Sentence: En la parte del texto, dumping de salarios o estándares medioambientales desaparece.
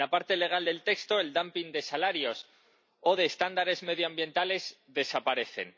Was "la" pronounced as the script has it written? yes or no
yes